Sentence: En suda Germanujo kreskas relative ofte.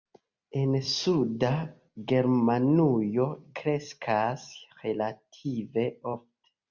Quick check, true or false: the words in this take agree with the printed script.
true